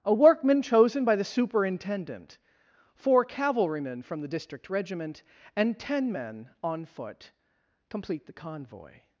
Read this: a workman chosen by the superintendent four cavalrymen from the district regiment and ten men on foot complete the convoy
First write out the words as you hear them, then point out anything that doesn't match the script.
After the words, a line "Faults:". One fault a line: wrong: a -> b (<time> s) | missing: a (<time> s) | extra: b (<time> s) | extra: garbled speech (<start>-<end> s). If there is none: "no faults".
a workman chosen by the superintendent four cavalrymen from the district regiment and ten men on foot complete the convoy
Faults:
no faults